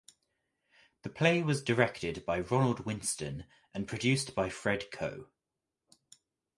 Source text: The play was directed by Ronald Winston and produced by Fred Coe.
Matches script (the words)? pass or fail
pass